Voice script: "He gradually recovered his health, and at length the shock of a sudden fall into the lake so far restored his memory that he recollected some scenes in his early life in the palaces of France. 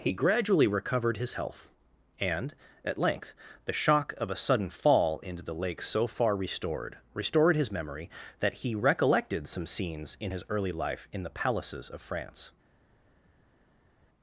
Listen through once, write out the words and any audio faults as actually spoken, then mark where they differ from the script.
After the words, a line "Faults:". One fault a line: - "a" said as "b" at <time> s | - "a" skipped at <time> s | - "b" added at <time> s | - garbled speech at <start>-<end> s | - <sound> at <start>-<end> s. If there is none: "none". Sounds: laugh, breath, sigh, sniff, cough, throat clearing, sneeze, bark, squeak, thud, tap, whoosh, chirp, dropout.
"He gradually recovered his health, and at length the shock of a sudden fall into the lake so far restored restored his memory that he recollected some scenes in his early life in the palaces of France.
Faults:
- "restored" added at 7.1 s